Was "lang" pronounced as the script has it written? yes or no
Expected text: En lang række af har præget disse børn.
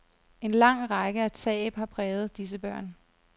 yes